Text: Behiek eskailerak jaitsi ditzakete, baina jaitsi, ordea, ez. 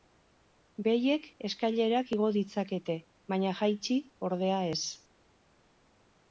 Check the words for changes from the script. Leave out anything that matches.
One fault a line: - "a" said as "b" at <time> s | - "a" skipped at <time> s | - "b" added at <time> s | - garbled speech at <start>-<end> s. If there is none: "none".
- "jaitsi" said as "igo" at 2.2 s